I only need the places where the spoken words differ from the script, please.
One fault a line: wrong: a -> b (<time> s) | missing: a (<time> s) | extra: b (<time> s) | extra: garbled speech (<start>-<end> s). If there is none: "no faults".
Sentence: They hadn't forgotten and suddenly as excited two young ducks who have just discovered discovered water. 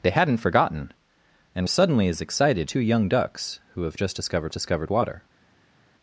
no faults